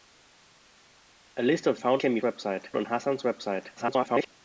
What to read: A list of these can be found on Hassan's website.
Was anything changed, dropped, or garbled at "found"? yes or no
yes